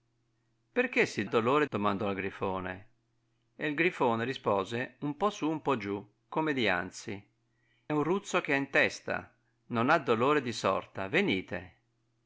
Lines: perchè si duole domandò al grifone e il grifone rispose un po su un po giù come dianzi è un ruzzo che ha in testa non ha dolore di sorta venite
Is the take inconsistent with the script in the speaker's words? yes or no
yes